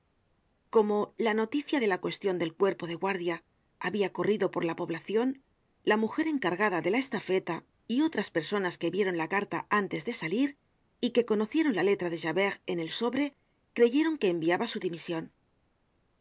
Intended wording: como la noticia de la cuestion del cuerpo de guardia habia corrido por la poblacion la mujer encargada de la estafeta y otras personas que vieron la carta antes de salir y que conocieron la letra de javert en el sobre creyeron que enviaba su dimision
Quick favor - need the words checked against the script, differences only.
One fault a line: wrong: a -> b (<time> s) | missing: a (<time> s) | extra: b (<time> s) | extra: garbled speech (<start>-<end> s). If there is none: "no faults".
no faults